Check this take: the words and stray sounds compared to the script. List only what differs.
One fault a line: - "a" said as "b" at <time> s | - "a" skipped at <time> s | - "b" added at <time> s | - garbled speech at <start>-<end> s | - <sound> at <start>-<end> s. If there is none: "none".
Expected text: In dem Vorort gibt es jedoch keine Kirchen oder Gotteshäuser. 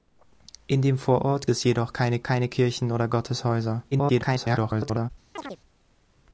- "gibt" skipped at 1.5 s
- "keine" added at 2.2 s
- garbled speech at 3.9-5.1 s
- chirp at 5.4-5.6 s